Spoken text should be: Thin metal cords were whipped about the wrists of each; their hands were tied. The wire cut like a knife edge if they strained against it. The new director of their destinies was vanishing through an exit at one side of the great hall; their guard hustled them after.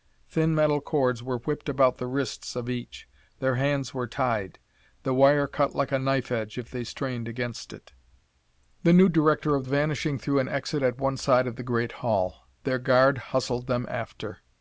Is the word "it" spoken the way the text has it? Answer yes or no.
yes